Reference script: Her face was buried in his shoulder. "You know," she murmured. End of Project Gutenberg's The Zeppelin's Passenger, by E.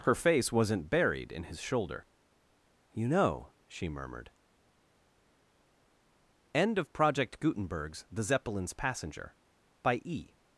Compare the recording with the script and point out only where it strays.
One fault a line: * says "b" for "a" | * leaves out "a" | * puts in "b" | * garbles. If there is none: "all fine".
* says "wasn't" for "was"